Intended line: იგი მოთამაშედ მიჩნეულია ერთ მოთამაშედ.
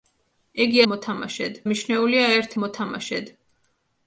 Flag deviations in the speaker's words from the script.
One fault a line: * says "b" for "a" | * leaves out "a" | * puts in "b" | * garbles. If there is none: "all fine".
all fine